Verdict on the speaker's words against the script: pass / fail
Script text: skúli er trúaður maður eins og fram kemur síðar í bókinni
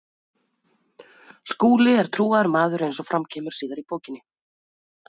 pass